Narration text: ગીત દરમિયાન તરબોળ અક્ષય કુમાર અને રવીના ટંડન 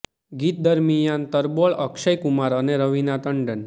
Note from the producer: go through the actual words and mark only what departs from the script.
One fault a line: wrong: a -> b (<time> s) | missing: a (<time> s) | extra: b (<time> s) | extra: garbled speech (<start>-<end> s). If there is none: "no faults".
no faults